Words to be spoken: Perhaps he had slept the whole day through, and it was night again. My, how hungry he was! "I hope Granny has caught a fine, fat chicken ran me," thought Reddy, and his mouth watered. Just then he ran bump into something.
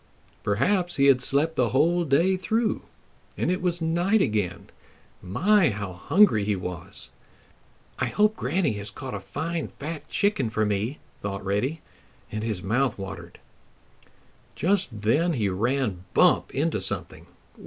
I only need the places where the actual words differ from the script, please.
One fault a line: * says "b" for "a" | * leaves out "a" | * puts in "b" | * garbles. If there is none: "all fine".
* says "for" for "ran"